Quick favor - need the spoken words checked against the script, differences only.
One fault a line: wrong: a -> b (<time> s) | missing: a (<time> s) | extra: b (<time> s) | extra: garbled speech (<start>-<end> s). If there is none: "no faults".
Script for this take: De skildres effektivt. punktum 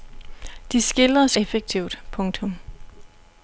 no faults